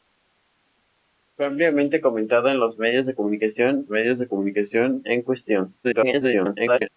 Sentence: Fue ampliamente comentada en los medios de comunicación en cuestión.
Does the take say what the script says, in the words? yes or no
no